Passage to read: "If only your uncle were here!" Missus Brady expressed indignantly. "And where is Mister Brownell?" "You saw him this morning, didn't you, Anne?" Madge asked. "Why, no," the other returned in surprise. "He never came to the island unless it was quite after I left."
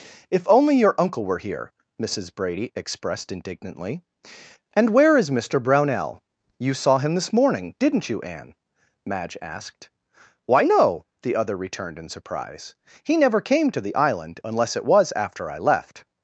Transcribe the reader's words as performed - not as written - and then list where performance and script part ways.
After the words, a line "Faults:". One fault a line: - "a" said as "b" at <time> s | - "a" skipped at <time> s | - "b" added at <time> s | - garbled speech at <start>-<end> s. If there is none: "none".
"If only your uncle were here!" Missus Brady expressed indignantly. "And where is Mister Brownell?" "You saw him this morning, didn't you, Anne?" Madge asked. "Why, no," the other returned in surprise. "He never came to the island unless it was after I left."
Faults:
- "quite" skipped at 15.1 s